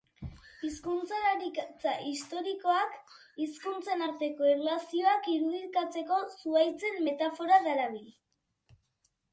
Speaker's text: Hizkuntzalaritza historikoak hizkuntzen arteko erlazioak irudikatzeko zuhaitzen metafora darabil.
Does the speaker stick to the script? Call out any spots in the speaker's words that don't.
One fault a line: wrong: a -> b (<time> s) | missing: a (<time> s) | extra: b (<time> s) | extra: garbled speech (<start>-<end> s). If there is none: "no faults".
no faults